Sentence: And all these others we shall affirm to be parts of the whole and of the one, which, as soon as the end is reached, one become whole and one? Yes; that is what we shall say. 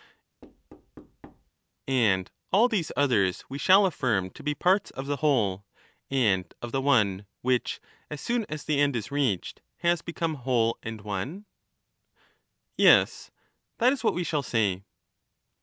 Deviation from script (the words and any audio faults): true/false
true